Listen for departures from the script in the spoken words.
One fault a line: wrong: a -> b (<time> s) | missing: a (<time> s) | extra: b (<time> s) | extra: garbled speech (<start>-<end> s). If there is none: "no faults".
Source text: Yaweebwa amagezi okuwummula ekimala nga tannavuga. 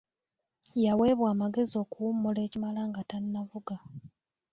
no faults